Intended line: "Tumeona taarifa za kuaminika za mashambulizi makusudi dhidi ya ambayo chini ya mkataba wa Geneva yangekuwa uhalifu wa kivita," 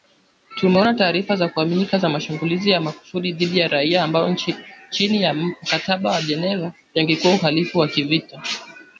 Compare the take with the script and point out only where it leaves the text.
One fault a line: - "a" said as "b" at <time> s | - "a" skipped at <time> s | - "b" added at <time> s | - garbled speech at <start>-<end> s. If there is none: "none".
- "ya" added at 2.7 s
- "raia" added at 3.7 s